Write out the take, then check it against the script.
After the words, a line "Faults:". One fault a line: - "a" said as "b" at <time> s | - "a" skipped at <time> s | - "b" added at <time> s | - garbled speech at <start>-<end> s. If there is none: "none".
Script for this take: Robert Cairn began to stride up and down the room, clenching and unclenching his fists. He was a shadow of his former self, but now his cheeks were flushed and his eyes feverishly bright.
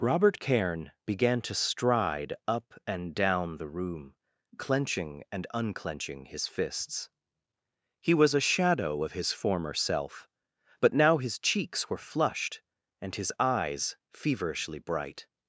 Robert Cairn began to stride up and down the room, clenching and unclenching his fists. He was a shadow of his former self, but now his cheeks were flushed and his eyes feverishly bright.
Faults:
none